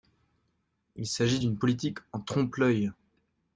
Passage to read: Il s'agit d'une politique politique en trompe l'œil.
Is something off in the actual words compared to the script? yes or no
yes